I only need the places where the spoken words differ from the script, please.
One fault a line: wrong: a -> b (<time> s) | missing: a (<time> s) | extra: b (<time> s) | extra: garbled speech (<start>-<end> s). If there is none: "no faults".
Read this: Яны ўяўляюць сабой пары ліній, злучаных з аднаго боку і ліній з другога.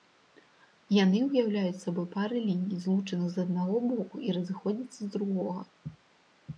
wrong: ліній -> разыходзяцца (4.4 s)